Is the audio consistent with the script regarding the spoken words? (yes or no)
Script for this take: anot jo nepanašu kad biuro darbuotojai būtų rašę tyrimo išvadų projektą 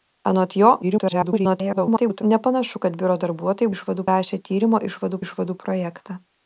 no